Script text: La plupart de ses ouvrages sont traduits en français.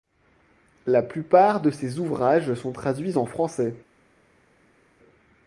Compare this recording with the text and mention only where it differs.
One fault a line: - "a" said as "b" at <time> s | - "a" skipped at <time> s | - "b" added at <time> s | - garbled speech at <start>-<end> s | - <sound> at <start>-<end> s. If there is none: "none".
none